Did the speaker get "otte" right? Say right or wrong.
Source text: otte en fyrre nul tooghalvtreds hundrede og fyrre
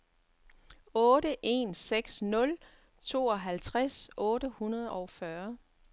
right